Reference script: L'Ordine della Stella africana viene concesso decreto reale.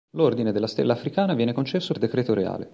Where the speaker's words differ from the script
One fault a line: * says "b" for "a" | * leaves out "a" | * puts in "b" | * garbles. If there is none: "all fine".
all fine